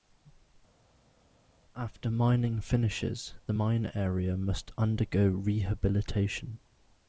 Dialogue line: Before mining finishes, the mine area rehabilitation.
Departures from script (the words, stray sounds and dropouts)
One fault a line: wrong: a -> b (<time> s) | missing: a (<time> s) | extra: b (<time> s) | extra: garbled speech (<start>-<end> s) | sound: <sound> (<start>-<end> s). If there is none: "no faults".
wrong: Before -> After (1.7 s)
extra: must undergo (4.3 s)